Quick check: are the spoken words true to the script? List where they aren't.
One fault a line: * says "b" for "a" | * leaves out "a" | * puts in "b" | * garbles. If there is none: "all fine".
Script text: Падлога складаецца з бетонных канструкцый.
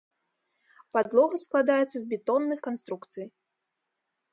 all fine